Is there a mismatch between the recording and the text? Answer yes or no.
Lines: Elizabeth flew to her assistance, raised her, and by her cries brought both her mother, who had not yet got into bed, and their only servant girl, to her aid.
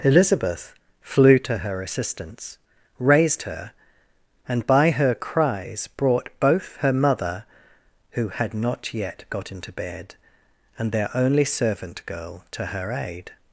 no